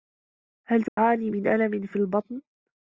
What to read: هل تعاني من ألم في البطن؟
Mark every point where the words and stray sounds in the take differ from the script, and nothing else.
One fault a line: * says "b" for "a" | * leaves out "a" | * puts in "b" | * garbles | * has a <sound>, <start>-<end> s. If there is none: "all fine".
* has a dropout, 0.9-1.0 s